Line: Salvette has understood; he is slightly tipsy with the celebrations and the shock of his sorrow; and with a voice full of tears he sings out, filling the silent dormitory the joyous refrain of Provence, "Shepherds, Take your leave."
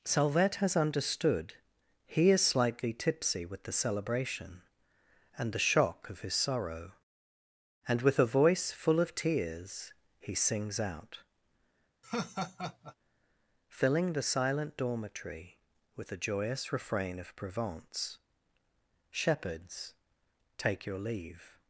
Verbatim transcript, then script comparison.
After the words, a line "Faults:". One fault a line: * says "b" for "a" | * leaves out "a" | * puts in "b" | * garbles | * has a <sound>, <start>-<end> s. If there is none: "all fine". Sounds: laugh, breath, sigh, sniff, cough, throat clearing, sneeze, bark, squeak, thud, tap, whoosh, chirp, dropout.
Salvette has understood; he is slightly tipsy with the celebration and the shock of his sorrow; and with a voice full of tears he sings out, filling the silent dormitory with the joyous refrain of Provence, "Shepherds, Take your leave."
Faults:
* says "celebration" for "celebrations"
* has a laugh, 12.0-13.0 s
* puts in "with"